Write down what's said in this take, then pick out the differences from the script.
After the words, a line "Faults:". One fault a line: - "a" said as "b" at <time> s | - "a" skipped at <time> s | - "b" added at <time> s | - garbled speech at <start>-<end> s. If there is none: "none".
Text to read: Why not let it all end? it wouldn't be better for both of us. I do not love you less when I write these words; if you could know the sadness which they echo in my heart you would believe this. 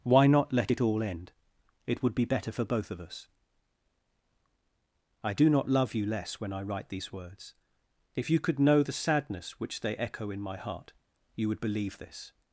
Why not let it all end? it would be better for both of us. I do not love you less when I write these words; if you could know the sadness which they echo in my heart you would believe this.
Faults:
- "wouldn't" said as "would" at 2.0 s